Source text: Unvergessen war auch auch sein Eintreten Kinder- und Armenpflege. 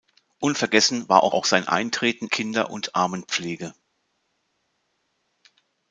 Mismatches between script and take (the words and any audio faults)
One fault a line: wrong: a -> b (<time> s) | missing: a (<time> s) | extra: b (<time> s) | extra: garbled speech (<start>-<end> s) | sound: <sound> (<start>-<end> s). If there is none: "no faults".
no faults